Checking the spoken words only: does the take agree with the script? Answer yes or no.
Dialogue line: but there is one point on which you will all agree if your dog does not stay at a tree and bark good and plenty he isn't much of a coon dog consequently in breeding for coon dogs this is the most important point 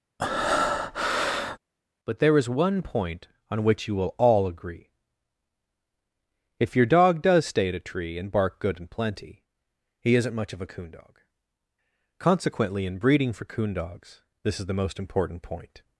no